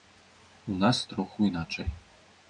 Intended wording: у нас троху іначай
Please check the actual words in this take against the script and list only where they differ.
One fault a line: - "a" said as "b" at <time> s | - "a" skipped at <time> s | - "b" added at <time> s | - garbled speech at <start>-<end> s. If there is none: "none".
none